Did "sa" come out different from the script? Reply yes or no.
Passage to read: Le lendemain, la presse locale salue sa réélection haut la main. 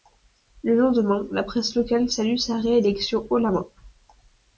no